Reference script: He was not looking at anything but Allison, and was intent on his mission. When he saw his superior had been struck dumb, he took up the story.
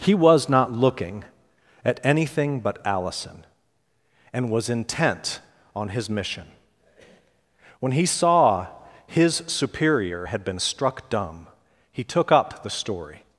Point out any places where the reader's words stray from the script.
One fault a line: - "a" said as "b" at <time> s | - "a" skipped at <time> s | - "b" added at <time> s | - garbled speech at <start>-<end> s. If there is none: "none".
none